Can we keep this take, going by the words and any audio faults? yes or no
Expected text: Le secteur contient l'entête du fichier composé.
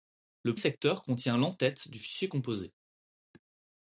yes